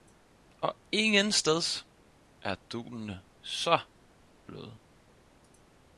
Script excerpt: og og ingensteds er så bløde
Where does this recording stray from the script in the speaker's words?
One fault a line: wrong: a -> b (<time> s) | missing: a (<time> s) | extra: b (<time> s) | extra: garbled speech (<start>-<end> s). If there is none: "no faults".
missing: og (0.8 s)
extra: dunene (2.7 s)